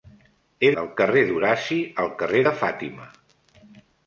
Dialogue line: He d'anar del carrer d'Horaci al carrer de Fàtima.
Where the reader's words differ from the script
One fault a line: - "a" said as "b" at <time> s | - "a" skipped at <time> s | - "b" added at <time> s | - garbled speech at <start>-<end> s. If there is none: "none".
- "d'anar" skipped at 0.7 s